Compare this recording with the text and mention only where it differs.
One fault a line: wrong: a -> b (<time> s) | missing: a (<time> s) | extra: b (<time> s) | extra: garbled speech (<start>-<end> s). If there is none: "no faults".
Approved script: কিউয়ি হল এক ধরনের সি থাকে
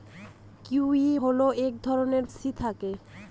no faults